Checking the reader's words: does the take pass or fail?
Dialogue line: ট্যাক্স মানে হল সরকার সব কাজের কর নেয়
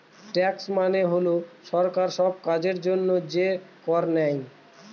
fail